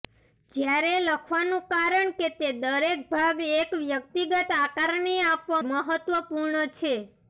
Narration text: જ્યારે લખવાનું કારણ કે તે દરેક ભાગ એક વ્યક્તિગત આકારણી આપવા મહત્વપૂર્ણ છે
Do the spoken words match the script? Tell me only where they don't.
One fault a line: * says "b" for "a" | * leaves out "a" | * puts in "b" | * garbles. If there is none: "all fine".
all fine